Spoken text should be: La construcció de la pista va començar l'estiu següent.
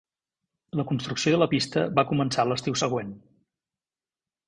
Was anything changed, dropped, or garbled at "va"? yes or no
no